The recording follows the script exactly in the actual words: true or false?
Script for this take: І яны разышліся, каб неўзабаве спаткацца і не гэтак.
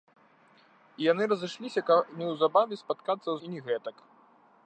true